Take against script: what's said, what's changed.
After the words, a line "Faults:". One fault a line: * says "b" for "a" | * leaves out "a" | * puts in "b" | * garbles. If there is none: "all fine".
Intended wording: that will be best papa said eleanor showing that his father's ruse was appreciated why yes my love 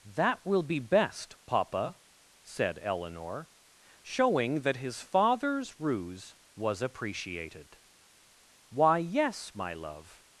that will be best papa said eleanor showing that his father's ruse was appreciated why yes my love
Faults:
all fine